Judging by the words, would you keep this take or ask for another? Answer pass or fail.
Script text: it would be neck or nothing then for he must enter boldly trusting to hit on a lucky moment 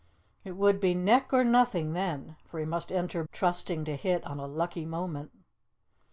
fail